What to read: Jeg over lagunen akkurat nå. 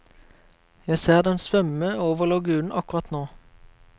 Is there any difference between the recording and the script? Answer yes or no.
yes